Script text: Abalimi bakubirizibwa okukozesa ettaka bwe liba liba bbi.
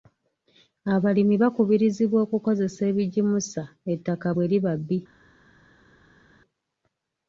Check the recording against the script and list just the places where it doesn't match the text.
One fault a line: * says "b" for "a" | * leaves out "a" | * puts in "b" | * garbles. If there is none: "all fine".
* puts in "ebigimusa"
* leaves out "liba"